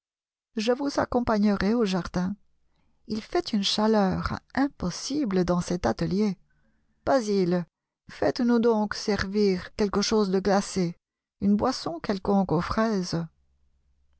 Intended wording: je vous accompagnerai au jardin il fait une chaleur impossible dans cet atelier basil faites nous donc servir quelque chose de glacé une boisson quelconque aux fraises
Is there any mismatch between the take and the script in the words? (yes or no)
no